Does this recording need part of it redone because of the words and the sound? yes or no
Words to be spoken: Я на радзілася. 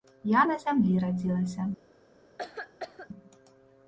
yes